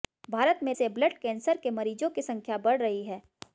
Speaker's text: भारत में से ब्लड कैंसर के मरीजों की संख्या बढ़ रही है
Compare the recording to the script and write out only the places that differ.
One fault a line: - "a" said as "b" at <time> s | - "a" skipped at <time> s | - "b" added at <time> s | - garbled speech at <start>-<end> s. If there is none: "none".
none